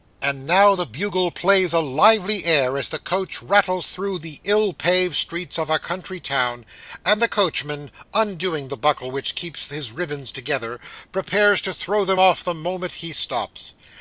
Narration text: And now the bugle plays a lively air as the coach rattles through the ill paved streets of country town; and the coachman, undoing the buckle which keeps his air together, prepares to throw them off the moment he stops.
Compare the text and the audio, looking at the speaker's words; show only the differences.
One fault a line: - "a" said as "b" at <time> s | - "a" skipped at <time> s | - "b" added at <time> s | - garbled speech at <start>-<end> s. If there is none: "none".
- "a" added at 5.7 s
- "air" said as "ribands" at 9.9 s